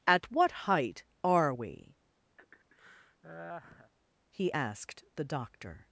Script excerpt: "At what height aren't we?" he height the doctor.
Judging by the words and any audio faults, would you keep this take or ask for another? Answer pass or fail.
fail